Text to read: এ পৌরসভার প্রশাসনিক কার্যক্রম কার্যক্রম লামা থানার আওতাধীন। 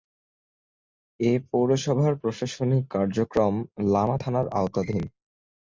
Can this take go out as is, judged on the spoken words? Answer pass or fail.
fail